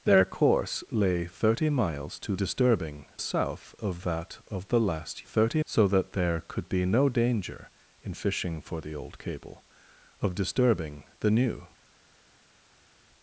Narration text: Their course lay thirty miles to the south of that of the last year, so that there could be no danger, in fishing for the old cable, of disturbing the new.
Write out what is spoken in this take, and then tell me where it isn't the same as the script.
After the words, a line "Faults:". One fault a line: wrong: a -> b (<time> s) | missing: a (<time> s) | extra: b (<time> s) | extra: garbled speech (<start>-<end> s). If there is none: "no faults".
Their course lay thirty miles to disturbing south of that of the last thirty, so that there could be no danger, in fishing for the old cable, of disturbing the new.
Faults:
wrong: the -> disturbing (2.4 s)
wrong: year -> thirty (5.2 s)